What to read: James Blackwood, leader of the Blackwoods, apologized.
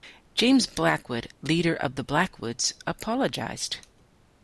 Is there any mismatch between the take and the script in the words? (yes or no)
no